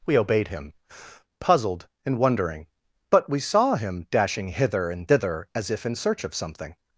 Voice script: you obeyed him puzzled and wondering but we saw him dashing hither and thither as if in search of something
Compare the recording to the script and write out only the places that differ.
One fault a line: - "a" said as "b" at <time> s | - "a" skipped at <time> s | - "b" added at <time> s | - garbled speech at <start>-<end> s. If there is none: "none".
- "you" said as "we" at 0.1 s